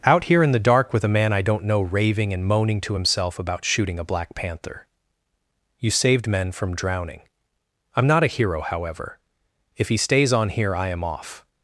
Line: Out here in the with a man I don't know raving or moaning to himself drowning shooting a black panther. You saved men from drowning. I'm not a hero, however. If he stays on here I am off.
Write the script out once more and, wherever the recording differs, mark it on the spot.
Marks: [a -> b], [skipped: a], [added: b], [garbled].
Out here in the [added: dark] with a man I don't know raving [or -> and] moaning to himself [drowning -> about] shooting a black panther. You saved men from drowning. I'm not a hero, however. If he stays on here I am off.